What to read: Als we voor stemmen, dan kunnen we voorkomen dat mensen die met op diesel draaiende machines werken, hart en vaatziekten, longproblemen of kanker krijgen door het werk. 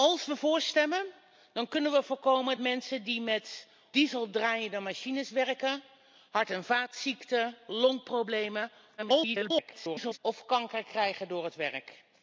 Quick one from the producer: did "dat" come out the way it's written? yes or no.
no